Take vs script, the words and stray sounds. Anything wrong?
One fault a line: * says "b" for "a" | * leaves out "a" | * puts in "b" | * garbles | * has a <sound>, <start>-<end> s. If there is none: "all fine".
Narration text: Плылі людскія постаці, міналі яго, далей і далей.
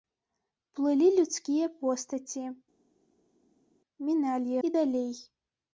* leaves out "яго далей"